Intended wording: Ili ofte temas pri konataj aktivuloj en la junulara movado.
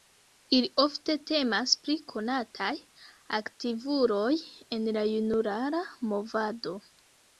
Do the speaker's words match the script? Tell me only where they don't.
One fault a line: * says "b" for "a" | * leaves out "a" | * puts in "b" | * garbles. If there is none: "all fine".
all fine